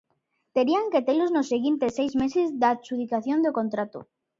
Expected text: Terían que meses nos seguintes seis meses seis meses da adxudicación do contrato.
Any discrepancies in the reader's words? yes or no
yes